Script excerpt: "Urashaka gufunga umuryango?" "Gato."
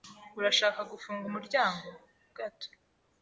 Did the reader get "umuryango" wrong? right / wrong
right